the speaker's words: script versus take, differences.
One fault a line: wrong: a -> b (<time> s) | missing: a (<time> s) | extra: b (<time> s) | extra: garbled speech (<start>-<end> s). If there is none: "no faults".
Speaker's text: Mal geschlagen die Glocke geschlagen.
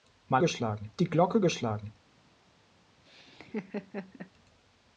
no faults